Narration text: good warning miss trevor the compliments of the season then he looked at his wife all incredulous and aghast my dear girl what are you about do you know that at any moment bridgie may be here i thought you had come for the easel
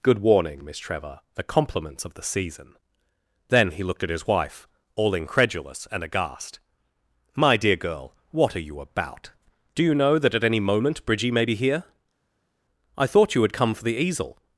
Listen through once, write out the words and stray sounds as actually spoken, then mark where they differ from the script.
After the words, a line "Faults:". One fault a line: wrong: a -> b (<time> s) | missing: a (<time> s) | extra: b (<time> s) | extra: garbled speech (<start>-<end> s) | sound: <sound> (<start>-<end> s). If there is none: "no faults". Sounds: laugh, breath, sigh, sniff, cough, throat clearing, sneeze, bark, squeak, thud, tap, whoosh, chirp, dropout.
good warning miss trevor the compliments of the season then he looked at his wife all incredulous and aghast my dear girl what are you about do you know that at any moment bridgie may be here i thought you had come for the easel
Faults:
no faults